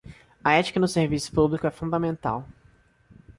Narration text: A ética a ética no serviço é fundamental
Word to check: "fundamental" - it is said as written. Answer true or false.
true